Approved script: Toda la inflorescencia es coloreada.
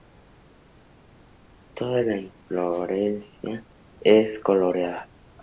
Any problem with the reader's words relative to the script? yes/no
no